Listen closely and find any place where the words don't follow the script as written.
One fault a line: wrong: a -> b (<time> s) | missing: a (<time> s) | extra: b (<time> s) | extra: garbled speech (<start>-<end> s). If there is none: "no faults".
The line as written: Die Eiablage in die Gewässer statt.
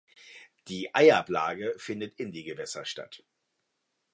extra: findet (1.8 s)